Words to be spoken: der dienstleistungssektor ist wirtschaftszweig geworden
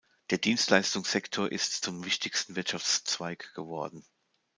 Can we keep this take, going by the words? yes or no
no